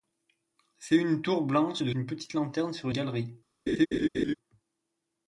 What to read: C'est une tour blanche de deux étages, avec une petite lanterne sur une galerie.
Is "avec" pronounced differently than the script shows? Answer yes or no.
yes